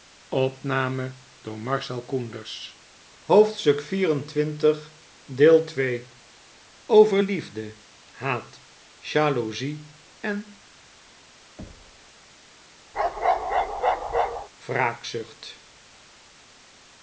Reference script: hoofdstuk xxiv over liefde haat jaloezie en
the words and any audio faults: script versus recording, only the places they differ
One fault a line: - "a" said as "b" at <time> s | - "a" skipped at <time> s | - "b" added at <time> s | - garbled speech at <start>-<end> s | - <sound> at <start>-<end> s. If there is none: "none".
- thud at 11.6-12.1 s
- bark at 12.9-14.5 s